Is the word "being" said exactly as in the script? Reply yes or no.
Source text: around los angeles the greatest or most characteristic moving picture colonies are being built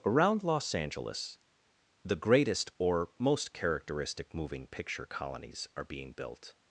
yes